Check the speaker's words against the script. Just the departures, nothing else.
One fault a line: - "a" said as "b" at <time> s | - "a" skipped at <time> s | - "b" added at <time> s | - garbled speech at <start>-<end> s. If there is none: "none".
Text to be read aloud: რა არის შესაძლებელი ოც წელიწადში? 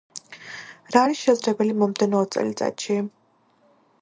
- "მომდევნო" added at 1.8 s